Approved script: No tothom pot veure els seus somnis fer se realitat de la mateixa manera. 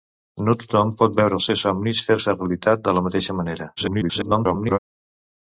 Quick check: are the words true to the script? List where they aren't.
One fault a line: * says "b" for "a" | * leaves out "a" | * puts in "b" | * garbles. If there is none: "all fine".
* garbles